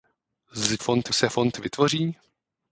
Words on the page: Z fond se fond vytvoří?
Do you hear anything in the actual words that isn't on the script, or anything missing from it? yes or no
no